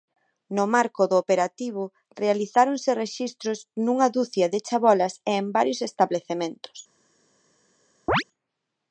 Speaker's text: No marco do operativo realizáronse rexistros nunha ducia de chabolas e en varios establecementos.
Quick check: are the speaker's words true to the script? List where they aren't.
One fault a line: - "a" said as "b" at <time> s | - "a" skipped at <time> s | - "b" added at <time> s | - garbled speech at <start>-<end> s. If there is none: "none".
none